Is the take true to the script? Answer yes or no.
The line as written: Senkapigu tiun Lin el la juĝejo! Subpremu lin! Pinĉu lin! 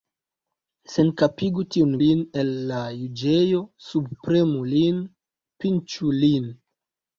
yes